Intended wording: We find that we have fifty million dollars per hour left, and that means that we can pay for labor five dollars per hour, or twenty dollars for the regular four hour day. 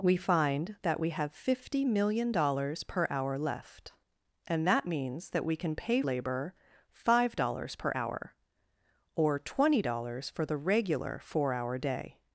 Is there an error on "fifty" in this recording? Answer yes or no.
no